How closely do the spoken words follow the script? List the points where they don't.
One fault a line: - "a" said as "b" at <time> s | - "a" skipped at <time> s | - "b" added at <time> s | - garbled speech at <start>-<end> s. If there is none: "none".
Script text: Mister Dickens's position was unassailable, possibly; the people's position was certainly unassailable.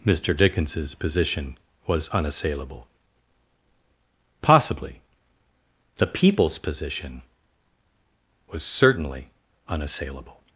none